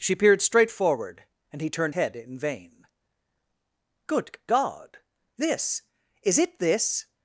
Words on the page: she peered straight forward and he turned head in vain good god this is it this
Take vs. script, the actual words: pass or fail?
pass